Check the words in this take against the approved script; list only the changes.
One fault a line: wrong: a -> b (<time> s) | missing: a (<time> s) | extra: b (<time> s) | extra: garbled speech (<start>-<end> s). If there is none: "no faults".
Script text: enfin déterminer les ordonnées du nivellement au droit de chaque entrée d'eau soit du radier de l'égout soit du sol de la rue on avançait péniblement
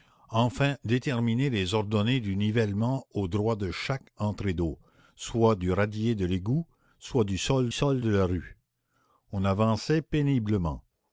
extra: sol (7.7 s)